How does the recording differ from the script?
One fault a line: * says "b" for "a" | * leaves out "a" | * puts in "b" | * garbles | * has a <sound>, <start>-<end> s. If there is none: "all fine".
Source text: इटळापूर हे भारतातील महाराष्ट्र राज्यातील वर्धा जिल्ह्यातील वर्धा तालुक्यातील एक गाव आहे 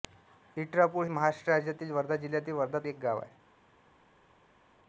* leaves out "हे भारतातील"
* leaves out "तालुक्यातील"